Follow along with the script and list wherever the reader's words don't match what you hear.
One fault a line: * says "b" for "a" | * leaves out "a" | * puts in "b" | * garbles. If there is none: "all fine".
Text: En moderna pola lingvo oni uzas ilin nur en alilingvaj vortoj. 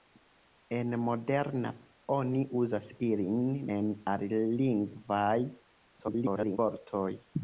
* leaves out "pola lingvo"
* leaves out "nur"
* garbles